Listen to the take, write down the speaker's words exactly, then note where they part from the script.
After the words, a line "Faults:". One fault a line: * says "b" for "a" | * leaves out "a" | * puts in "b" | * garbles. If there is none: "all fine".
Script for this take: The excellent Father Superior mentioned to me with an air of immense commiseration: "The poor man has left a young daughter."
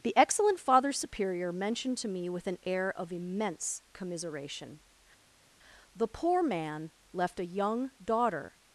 The excellent Father Superior mentioned to me with an air of immense commiseration: "The poor man left a young daughter."
Faults:
* leaves out "has"